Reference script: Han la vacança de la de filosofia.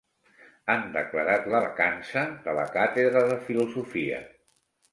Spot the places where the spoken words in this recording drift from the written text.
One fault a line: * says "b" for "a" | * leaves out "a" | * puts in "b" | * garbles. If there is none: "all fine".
* puts in "declarat"
* puts in "càtedra"